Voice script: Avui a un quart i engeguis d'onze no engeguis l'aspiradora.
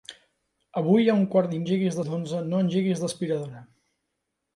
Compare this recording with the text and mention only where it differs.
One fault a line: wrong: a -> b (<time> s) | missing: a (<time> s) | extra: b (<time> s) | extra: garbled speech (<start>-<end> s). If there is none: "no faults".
no faults